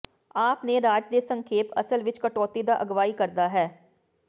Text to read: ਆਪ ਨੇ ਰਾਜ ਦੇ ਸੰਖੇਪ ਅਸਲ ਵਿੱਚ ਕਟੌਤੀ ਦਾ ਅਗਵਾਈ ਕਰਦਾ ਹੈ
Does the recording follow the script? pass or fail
pass